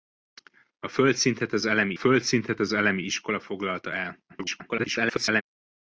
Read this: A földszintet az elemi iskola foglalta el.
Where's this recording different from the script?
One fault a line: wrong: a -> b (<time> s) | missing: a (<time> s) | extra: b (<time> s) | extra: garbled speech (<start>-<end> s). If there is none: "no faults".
extra: földszintet az elemi (1.9 s)
extra: garbled speech (4.3-5.4 s)